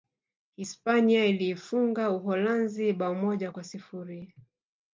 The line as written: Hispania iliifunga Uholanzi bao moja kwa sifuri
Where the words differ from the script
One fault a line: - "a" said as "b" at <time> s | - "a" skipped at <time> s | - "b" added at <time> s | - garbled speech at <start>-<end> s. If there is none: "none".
none